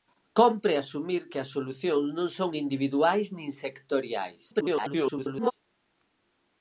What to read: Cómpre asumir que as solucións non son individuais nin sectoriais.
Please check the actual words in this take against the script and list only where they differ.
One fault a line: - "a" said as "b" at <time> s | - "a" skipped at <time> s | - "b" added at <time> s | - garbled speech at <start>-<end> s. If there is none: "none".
- garbled speech at 4.5-5.5 s